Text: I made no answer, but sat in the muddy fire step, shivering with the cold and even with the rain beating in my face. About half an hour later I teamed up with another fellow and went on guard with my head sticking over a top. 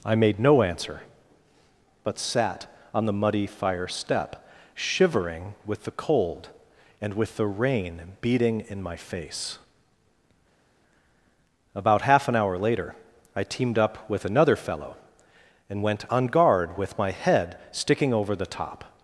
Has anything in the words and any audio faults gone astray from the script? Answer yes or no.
yes